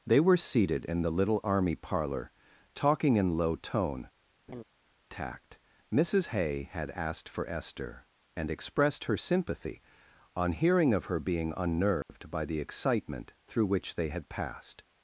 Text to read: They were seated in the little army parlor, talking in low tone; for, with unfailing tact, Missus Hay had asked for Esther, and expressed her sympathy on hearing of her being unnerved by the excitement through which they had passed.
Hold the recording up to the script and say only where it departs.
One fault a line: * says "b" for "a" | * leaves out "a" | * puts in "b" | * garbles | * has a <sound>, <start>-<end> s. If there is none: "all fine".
* leaves out "for with unfailing"
* has a laugh, 4.5-4.6 s
* has a dropout, 12.0-12.1 s